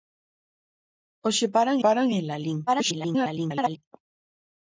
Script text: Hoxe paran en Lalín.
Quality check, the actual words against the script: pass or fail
fail